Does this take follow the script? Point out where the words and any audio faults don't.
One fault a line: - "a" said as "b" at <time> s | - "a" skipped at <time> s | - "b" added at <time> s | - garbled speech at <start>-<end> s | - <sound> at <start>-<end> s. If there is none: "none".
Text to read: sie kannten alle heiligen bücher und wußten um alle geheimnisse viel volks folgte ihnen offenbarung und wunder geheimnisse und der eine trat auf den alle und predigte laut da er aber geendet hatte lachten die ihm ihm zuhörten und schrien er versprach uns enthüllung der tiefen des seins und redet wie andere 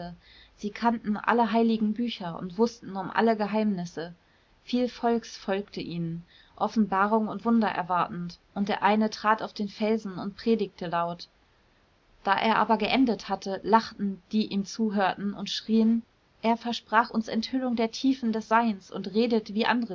- "geheimnisse" said as "erwartend" at 7.7 s
- "alle" said as "felsen" at 9.7 s
- "ihm" skipped at 14.7 s